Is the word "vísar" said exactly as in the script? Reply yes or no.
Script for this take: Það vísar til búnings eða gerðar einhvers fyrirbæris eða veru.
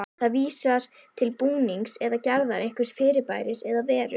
yes